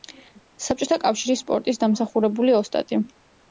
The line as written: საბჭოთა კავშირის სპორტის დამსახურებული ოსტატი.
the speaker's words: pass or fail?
pass